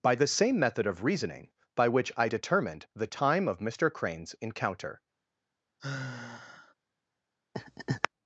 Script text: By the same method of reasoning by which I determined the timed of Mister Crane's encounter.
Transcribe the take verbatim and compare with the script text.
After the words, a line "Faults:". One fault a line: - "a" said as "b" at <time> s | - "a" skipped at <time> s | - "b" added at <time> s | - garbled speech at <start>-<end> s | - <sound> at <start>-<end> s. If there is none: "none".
By the same method of reasoning by which I determined the time of Mister Crane's encounter.
Faults:
- "timed" said as "time" at 3.1 s
- sigh at 5.8-6.7 s
- laugh at 7.5-8.1 s